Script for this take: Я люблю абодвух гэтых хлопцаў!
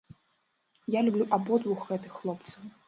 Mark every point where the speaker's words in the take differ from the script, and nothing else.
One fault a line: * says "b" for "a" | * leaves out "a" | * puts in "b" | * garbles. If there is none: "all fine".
all fine